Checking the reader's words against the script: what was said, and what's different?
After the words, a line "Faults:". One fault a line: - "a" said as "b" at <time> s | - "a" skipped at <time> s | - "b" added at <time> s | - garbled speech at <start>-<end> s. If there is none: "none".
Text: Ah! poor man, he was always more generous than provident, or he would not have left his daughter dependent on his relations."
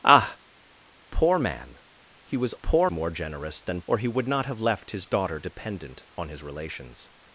Ah! poor man, he was poor more generous than or he would not have left his daughter dependent on his relations."
Faults:
- "always" said as "poor" at 2.6 s
- "provident" skipped at 3.8 s